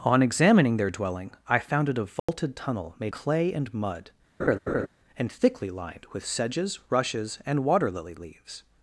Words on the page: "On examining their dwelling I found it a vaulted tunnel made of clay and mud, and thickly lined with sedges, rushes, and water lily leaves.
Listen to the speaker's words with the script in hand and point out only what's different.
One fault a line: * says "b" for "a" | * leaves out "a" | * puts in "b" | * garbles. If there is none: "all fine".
* leaves out "of"